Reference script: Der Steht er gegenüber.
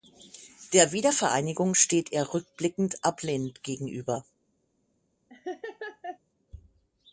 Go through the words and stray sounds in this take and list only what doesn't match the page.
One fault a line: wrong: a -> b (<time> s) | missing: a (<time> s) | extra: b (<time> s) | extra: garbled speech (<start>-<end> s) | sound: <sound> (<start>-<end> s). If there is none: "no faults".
extra: Wiedervereinigung (0.9 s)
extra: rückblickend ablehnend (2.3 s)
sound: laugh (5.3-6.2 s)